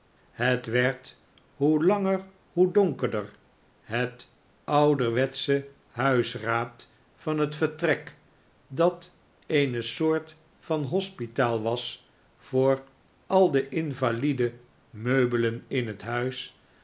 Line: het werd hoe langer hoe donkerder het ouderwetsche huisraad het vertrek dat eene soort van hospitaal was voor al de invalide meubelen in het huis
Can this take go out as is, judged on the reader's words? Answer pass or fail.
fail